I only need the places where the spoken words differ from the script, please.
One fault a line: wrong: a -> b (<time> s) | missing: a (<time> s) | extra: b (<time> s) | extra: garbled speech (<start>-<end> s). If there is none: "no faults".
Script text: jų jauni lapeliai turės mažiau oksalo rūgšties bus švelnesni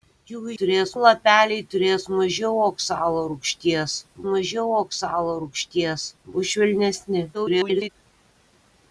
wrong: jauni -> turės (0.6 s)
extra: mažiau oksalo rūgšties (4.3 s)
extra: garbled speech (7.3-7.9 s)